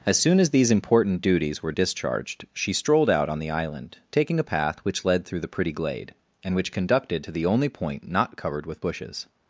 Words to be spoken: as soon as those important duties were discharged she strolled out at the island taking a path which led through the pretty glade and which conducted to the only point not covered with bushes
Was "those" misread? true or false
true